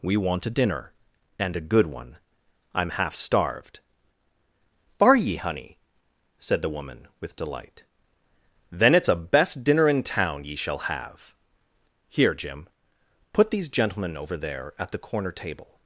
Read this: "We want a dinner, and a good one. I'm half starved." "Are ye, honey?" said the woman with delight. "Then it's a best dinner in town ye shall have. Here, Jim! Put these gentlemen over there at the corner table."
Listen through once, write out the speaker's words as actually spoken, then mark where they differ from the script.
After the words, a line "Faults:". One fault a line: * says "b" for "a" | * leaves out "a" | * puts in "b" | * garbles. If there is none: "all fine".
"We want a dinner, and a good one. I'm half starved." "Are ye, honey?" said the woman with delight. "Then it's a best dinner in town ye shall have. Here, Jim! Put these gentlemen over there at the corner table."
Faults:
all fine